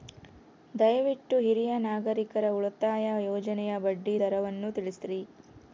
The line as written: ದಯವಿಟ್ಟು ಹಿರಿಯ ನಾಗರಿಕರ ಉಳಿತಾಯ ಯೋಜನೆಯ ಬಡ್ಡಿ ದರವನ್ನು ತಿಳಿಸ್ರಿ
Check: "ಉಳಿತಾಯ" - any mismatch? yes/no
no